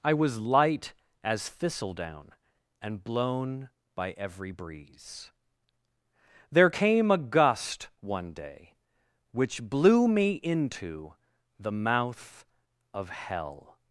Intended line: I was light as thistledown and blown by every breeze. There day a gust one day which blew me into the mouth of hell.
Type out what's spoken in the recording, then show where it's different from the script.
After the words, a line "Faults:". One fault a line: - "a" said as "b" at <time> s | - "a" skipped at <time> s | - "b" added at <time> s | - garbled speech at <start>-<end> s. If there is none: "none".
I was light as thistledown and blown by every breeze. There came a gust one day which blew me into the mouth of hell.
Faults:
- "day" said as "came" at 6.7 s